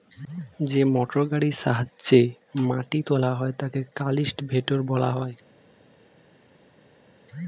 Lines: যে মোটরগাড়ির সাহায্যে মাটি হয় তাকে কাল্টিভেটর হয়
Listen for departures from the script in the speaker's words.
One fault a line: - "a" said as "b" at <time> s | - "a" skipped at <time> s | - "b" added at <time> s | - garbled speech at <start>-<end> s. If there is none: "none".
- "তোলা" added at 3.1 s
- "বলা" added at 4.8 s